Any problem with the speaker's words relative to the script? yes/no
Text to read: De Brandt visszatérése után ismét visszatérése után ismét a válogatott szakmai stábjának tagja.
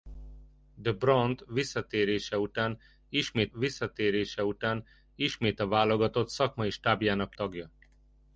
no